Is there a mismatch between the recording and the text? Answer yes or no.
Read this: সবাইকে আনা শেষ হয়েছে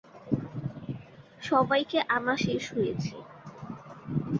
no